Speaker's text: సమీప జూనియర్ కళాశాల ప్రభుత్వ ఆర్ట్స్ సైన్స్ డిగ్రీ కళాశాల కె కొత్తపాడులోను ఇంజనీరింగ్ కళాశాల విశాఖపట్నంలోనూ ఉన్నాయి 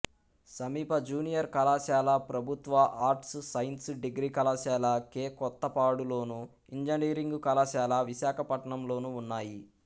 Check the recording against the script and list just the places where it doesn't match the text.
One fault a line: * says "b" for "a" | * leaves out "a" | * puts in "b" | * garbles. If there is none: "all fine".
all fine